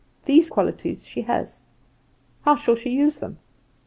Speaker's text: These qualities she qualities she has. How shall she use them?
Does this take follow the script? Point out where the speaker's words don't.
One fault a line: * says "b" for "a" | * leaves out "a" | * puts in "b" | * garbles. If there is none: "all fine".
* leaves out "qualities she"